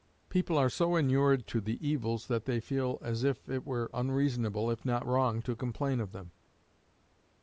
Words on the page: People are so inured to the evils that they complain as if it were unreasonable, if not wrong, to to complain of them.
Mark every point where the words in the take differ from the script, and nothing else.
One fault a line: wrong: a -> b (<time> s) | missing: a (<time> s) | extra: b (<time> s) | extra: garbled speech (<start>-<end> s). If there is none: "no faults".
wrong: complain -> feel (2.6 s)
missing: to (5.6 s)